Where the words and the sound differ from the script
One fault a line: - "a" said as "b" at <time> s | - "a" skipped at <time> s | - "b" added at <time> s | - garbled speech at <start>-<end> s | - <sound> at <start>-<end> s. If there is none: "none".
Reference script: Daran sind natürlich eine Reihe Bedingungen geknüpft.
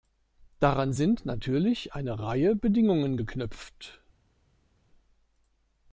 none